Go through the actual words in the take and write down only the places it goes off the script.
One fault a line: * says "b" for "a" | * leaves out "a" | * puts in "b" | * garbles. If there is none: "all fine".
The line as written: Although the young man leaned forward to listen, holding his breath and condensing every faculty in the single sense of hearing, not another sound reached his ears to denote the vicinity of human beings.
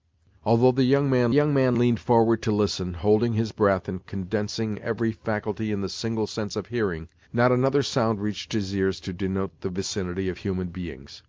* puts in "young man"